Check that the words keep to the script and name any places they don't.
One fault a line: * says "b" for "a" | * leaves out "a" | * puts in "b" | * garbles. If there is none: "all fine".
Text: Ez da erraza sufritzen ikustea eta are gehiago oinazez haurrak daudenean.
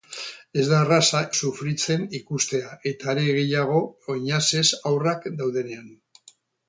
all fine